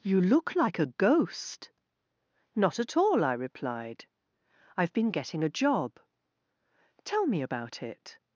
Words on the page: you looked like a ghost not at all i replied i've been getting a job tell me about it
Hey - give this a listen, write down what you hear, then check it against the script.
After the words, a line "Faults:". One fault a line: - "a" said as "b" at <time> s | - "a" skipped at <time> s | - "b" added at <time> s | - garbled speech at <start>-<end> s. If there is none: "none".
you look like a ghost not at all i replied i've been getting a job tell me about it
Faults:
- "looked" said as "look" at 0.2 s